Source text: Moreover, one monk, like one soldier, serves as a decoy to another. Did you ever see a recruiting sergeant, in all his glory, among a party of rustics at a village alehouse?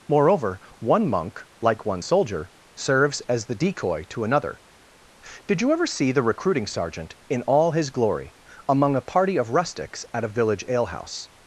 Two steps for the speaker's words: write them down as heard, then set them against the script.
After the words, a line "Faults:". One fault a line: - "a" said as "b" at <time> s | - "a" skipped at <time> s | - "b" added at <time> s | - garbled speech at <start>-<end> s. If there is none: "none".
Moreover, one monk, like one soldier, serves as the decoy to another. Did you ever see the recruiting sergeant, in all his glory, among a party of rustics at a village alehouse?
Faults:
- "a" said as "the" at 3.5 s
- "a" said as "the" at 6.1 s